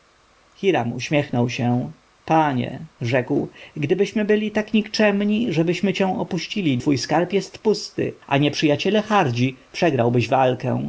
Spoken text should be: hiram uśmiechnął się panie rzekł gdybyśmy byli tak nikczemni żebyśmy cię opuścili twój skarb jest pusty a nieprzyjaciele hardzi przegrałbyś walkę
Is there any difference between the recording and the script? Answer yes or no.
no